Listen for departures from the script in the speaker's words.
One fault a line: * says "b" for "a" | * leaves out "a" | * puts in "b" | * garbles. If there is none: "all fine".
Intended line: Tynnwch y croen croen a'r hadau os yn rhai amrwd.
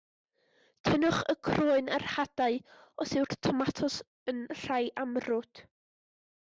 * leaves out "croen"
* puts in "yw'r tomatos"